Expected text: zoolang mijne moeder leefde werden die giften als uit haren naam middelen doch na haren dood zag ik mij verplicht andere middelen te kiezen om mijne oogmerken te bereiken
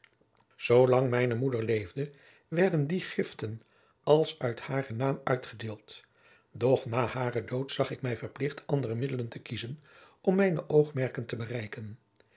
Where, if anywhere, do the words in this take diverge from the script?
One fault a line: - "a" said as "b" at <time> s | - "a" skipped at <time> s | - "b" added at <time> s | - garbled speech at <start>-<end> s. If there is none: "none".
- "middelen" said as "uitgedeeld" at 5.2 s